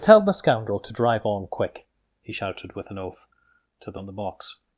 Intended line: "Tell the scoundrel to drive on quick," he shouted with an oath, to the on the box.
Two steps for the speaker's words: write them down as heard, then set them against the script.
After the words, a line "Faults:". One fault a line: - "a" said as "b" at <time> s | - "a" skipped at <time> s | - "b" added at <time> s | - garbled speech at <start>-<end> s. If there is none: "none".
"Tell the scoundrel to drive on quick," he shouted with an oath, to the on the box.
Faults:
none